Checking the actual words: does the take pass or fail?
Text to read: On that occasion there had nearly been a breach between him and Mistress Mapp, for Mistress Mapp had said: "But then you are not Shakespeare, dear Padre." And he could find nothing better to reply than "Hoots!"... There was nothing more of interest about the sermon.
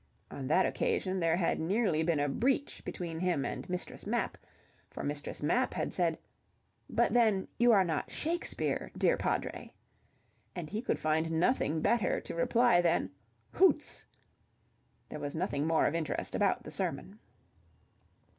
pass